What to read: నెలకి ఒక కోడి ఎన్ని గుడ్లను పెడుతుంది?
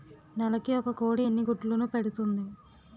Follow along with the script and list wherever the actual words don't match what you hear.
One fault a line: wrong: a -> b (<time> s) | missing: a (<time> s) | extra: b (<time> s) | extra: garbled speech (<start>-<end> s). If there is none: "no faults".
no faults